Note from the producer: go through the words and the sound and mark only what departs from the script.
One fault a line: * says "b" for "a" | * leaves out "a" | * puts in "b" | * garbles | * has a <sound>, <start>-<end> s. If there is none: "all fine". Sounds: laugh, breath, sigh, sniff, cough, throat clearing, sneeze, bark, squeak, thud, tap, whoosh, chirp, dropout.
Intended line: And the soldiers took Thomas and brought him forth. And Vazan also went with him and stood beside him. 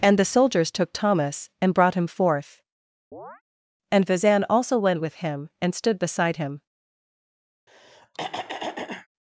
* has a chirp, 3.1-3.4 s
* has a throat clearing, 7.7-9.1 s